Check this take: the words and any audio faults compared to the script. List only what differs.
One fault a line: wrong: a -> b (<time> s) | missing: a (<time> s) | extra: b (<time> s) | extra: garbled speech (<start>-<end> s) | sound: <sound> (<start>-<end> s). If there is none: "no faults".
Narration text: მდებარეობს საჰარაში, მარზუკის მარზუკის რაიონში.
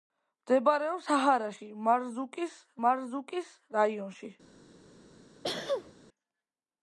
sound: sneeze (5.4-5.9 s)